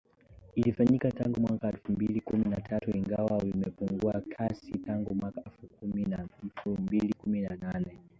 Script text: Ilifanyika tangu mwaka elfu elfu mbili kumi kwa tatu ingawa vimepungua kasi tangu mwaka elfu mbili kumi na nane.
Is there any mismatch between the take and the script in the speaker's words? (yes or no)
yes